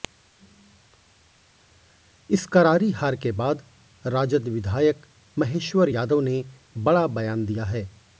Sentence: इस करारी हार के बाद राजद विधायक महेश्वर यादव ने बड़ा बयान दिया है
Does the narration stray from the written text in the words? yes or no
no